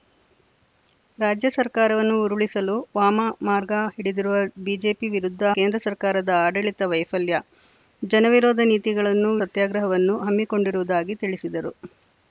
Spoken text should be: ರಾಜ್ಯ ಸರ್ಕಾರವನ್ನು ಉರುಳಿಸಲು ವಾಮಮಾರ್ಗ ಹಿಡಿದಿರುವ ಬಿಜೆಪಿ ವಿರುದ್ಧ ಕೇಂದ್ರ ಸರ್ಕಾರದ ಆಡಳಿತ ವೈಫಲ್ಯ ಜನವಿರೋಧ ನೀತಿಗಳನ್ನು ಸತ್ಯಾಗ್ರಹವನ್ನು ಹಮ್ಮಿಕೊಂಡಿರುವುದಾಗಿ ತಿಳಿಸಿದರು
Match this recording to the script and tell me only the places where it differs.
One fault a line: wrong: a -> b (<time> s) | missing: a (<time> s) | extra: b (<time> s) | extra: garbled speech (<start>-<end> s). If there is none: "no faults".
no faults